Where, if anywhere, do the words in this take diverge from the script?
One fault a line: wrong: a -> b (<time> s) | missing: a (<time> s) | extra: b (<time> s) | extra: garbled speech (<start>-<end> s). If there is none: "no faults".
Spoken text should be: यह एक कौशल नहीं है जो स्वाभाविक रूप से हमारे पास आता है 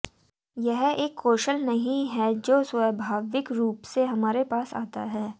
no faults